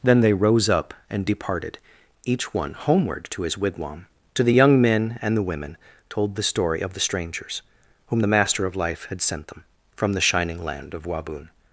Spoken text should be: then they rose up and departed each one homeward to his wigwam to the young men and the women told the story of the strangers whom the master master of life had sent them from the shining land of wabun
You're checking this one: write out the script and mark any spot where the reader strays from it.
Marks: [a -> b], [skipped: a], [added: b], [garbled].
then they rose up and departed each one homeward to his wigwam to the young men and the women told the story of the strangers whom the master [skipped: master] of life had sent them from the shining land of wabun